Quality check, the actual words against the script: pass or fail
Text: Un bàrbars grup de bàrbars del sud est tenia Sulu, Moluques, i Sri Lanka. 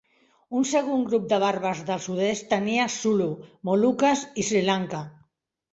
fail